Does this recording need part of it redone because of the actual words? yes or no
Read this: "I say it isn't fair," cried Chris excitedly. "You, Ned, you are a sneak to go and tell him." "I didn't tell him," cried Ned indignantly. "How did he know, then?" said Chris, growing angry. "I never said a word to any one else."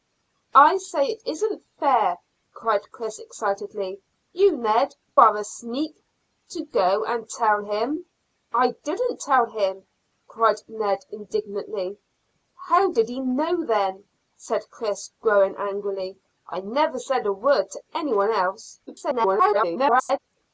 yes